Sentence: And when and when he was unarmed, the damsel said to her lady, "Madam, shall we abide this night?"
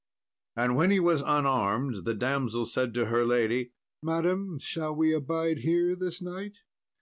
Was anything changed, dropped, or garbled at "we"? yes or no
no